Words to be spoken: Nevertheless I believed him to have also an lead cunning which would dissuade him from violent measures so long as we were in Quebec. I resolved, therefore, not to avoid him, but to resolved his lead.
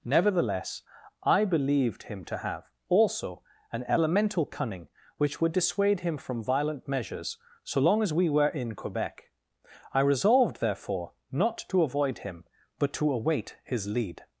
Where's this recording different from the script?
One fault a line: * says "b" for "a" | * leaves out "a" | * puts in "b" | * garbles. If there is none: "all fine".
* says "elemental" for "lead"
* says "await" for "resolved"